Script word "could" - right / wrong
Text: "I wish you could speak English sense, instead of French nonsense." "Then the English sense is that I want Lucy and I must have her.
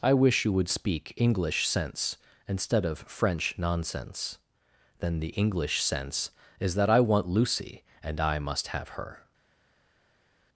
wrong